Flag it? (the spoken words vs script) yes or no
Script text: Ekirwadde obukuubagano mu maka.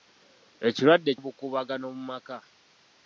no